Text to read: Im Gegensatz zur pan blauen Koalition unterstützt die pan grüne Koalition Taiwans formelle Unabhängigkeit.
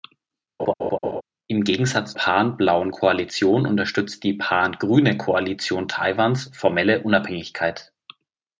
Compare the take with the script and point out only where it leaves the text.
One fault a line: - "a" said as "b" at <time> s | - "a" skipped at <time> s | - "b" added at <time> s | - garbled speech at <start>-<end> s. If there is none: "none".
- "zur" skipped at 2.2 s